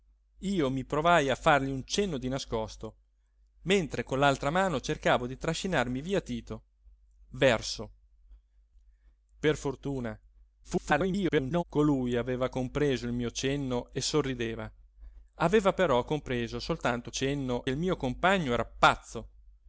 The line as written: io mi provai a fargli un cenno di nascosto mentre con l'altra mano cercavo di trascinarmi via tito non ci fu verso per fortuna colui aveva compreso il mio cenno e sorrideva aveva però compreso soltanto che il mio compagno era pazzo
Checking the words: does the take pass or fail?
fail